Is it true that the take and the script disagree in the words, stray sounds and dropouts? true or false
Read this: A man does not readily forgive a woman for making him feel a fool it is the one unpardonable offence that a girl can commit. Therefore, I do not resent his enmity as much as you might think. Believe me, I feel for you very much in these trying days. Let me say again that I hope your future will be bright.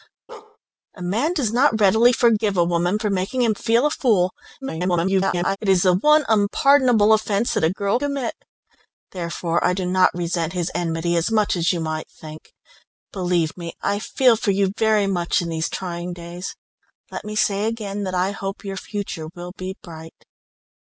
true